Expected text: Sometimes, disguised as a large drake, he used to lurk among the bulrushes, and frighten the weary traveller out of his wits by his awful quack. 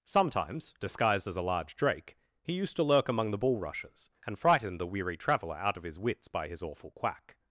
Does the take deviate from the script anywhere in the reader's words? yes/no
no